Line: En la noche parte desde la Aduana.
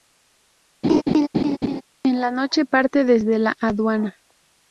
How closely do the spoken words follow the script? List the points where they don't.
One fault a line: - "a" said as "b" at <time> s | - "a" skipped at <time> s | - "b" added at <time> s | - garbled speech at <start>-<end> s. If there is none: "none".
none